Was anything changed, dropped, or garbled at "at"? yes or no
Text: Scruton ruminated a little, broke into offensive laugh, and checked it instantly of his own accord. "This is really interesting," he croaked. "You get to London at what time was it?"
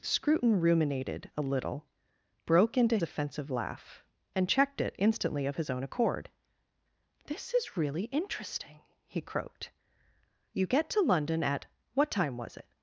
no